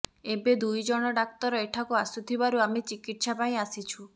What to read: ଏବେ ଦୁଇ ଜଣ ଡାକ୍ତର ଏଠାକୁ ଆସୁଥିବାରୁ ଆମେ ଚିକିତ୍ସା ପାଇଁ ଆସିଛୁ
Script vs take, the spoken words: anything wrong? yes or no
no